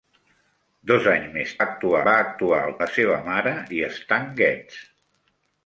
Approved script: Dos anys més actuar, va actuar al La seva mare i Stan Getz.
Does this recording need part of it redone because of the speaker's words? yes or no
no